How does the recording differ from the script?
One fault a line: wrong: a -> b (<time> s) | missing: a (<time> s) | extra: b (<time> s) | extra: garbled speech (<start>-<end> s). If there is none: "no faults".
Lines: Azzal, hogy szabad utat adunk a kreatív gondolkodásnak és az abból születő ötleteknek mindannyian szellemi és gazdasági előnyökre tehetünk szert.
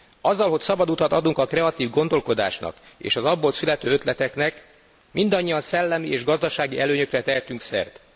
no faults